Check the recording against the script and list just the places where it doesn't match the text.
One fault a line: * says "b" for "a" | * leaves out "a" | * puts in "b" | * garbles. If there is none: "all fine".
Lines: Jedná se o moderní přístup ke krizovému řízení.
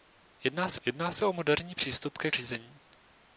* puts in "jedná se"
* leaves out "krizovému"